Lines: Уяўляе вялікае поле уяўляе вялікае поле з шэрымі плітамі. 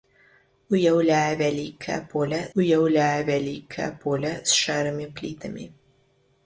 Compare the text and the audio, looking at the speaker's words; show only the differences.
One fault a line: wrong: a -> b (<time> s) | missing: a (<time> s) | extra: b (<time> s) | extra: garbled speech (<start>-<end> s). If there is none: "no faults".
no faults